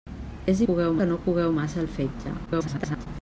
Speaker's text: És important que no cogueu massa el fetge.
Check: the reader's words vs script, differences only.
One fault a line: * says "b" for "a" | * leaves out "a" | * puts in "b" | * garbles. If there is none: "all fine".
* says "cogueu" for "important"
* garbles